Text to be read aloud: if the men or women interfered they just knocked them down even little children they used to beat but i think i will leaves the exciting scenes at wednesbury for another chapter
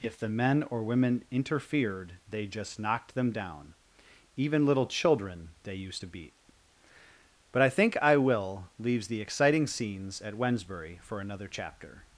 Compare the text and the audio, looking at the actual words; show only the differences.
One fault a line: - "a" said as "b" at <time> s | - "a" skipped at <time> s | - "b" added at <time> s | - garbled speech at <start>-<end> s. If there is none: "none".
none